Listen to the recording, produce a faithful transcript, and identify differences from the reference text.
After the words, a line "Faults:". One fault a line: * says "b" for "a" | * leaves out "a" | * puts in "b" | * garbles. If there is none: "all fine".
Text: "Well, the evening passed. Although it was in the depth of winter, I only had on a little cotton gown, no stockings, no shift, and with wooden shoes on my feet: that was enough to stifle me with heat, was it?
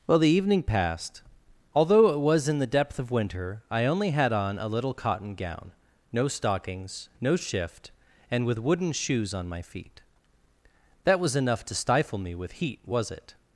"Well, the evening passed. Although it was in the depth of winter, I only had on a little cotton gown, no stockings, no shift, and with wooden shoes on my feet: that was enough to stifle me with heat, was it?
Faults:
all fine